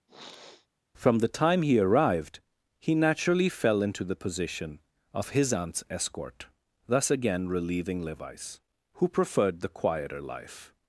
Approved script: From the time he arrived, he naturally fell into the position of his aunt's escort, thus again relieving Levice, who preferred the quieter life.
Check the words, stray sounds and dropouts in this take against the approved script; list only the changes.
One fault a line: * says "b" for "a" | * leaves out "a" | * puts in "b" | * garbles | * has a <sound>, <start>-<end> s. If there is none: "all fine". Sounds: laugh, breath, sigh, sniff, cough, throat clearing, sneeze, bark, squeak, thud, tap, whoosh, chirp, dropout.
* has a sniff, 0.1-0.7 s